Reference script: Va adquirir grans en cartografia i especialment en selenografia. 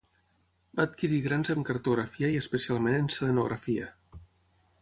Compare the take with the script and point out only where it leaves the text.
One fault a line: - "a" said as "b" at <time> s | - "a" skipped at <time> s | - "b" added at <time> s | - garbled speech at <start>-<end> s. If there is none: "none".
none